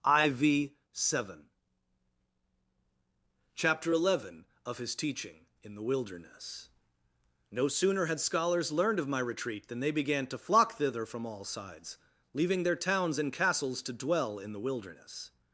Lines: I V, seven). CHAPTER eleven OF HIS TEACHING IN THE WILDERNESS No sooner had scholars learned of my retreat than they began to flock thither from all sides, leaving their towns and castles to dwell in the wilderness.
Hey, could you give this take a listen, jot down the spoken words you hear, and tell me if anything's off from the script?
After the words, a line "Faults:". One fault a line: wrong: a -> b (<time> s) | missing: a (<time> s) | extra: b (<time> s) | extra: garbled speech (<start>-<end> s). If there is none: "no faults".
I V, seven). CHAPTER eleven OF HIS TEACHING IN THE WILDERNESS No sooner had scholars learned of my retreat than they began to flock thither from all sides, leaving their towns and castles to dwell in the wilderness.
Faults:
no faults